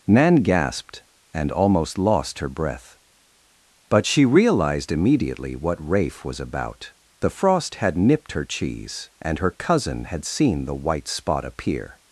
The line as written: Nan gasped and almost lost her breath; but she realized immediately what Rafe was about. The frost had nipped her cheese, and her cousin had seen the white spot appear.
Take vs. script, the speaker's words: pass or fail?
pass